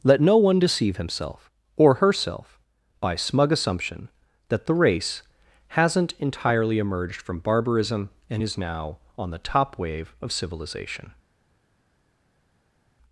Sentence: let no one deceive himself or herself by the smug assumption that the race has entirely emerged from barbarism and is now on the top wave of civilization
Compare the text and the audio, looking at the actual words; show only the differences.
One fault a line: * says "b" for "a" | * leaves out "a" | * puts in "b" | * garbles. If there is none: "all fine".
* leaves out "the"
* says "hasn't" for "has"